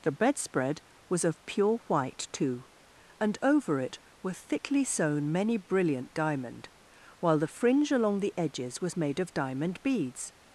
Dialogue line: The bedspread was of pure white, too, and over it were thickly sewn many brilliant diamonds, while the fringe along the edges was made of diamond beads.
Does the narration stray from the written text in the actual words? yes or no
yes